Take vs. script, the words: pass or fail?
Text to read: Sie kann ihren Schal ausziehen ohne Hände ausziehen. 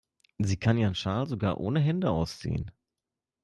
fail